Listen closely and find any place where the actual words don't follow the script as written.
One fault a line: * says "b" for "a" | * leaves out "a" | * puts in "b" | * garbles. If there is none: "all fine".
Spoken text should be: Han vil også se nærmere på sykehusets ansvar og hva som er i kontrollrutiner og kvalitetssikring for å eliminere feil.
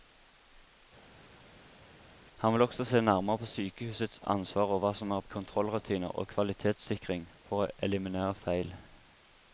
all fine